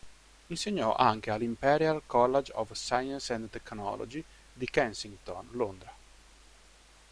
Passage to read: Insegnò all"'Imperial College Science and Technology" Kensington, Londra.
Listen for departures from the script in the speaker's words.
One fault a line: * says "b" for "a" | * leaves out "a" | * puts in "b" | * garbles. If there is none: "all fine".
* puts in "anche"
* puts in "of"
* puts in "di"